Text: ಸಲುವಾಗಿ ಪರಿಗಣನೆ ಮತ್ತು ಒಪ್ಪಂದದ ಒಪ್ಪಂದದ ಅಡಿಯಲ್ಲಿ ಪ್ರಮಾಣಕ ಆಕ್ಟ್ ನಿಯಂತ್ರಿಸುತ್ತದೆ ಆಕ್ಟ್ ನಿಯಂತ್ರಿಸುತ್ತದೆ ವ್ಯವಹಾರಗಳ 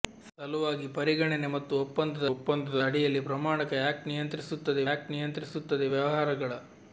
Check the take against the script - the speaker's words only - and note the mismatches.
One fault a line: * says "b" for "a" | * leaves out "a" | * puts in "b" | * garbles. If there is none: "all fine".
all fine